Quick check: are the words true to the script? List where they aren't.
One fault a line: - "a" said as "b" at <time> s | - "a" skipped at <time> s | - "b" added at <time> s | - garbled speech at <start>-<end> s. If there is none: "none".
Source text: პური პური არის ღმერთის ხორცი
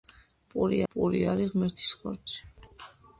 none